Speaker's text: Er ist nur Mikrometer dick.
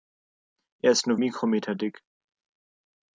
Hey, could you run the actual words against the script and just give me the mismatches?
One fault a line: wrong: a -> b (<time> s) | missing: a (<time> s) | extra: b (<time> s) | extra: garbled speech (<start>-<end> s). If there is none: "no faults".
no faults